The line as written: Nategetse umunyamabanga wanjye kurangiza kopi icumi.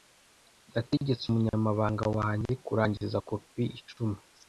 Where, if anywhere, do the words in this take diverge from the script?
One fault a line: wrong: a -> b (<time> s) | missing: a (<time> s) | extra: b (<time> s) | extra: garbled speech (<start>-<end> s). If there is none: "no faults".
no faults